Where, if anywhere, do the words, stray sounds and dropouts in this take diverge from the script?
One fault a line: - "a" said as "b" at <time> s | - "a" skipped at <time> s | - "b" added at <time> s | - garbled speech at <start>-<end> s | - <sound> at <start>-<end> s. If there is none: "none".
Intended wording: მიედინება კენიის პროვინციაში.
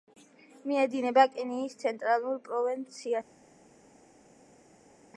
- "ცენტრალურ" added at 1.8 s